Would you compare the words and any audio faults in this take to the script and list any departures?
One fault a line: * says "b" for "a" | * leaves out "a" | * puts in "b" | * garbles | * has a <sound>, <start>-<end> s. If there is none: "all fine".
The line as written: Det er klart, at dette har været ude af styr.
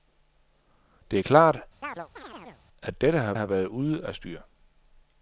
* has a chirp, 1.8-2.6 s
* puts in "har"